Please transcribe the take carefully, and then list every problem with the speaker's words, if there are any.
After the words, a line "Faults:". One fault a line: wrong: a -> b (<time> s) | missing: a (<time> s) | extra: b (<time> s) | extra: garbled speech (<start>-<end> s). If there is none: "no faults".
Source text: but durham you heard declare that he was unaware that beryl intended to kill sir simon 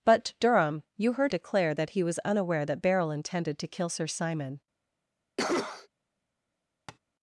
but durham you heard declare that he was unaware that beryl intended to kill sir simon
Faults:
no faults